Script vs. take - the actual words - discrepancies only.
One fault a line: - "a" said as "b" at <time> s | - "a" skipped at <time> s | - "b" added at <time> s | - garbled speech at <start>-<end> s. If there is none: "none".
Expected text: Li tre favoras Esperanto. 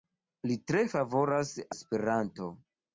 none